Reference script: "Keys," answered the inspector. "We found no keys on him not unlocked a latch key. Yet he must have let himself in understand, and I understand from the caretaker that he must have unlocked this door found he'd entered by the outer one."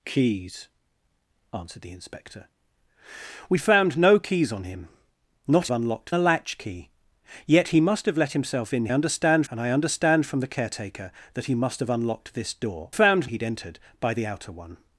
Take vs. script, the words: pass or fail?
pass